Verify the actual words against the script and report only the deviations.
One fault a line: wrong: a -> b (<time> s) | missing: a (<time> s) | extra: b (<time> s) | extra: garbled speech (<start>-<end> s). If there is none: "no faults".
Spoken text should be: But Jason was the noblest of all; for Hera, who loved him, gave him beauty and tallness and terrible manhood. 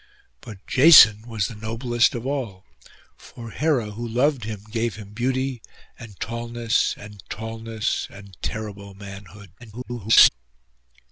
extra: tallness and (7.3 s)
extra: garbled speech (9.6-10.3 s)